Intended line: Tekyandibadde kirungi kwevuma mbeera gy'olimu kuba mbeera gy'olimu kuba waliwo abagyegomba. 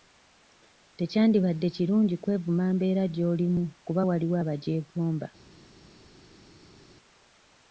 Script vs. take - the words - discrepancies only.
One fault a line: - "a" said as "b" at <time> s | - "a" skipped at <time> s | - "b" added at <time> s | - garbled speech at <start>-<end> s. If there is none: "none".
- "mbeera gy'olimu kuba" skipped at 4.0 s